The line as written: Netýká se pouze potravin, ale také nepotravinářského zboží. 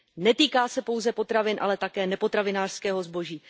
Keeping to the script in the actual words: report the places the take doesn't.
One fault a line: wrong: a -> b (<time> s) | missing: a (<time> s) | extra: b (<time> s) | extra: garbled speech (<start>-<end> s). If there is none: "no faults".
no faults